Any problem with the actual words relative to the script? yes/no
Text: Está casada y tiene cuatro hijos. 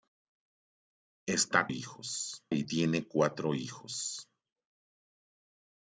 yes